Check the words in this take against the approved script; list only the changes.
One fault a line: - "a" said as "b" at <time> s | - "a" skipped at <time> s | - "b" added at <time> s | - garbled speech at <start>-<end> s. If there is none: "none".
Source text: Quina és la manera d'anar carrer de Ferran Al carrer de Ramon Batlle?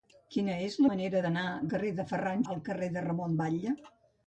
none